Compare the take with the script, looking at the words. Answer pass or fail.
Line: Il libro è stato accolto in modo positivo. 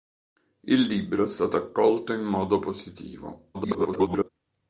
fail